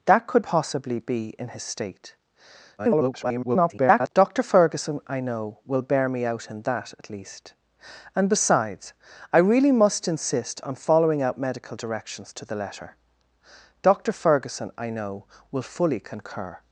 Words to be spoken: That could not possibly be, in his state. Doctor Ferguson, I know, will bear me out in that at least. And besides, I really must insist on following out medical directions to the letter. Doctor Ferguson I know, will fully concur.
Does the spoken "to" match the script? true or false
true